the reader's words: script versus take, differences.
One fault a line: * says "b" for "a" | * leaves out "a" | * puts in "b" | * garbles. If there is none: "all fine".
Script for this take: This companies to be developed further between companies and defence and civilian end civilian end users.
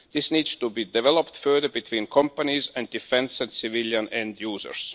* says "needs" for "companies"
* leaves out "civilian end"